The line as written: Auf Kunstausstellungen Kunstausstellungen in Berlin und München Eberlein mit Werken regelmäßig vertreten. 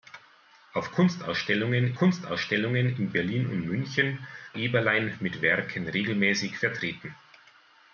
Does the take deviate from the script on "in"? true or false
false